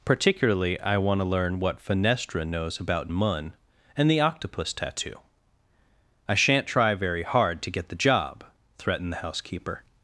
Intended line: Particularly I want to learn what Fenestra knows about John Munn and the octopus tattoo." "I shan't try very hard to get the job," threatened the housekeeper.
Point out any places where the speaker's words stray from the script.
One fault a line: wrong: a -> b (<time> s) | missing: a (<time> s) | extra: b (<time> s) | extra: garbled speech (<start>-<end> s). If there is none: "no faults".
missing: John (3.1 s)